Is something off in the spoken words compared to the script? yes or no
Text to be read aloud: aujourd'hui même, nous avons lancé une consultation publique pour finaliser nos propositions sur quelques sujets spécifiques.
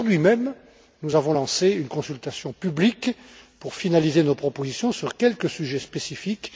no